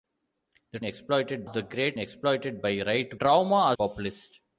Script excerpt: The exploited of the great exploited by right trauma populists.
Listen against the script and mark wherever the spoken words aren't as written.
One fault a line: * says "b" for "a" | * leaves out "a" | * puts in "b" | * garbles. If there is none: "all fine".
all fine